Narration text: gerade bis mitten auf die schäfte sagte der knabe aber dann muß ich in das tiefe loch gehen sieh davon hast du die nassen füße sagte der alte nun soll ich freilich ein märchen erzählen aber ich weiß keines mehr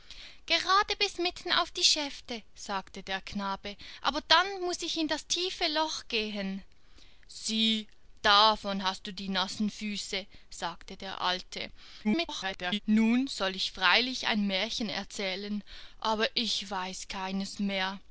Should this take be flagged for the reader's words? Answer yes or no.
yes